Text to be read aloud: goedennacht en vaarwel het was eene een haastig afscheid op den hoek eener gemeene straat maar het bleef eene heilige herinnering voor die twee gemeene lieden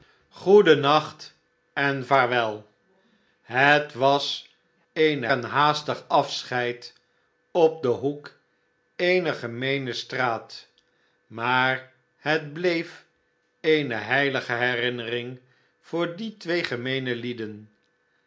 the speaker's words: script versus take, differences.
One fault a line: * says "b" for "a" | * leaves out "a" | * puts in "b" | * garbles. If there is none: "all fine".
all fine